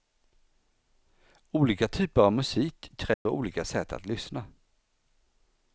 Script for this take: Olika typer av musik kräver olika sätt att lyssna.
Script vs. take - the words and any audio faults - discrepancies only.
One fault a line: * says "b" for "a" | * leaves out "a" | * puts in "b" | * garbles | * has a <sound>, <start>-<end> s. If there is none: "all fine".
* has a dropout, 3.1-3.3 s